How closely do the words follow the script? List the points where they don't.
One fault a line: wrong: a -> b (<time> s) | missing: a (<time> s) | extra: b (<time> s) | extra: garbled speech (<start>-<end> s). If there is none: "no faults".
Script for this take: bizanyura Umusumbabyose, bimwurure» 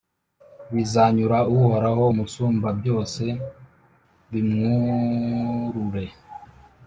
extra: Uhoraho (1.5 s)